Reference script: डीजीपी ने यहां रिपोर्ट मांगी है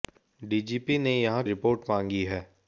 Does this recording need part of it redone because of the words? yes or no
no